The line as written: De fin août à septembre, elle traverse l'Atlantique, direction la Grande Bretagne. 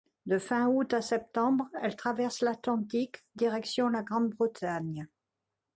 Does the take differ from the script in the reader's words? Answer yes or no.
no